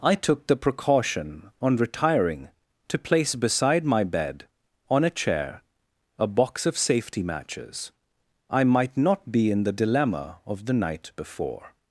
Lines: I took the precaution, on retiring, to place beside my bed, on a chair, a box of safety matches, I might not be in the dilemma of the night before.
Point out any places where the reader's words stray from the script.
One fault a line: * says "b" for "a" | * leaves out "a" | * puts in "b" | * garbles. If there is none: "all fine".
all fine